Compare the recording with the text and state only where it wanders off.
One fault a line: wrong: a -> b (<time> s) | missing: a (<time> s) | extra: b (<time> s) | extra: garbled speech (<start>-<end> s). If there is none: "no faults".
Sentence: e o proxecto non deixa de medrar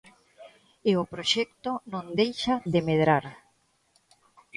no faults